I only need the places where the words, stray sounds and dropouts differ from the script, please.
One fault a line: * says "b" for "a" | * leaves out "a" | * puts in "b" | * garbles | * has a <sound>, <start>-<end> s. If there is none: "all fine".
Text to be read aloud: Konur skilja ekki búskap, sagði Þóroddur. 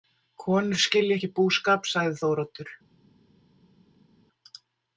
all fine